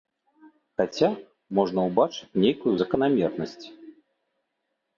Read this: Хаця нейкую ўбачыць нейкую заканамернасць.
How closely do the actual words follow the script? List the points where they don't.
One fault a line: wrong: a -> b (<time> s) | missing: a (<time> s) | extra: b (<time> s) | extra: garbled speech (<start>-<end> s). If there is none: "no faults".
wrong: нейкую -> можна (1.6 s)